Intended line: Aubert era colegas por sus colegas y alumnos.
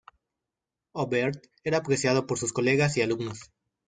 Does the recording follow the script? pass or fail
fail